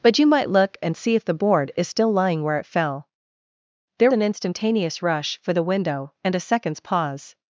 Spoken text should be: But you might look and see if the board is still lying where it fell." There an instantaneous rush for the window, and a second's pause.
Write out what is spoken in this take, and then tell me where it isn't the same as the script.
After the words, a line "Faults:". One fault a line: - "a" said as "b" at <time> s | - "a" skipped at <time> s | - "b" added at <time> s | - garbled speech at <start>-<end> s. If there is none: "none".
But you might look and see if the board is still lying where it fell." There an instantaneous rush for the window, and a second's pause.
Faults:
none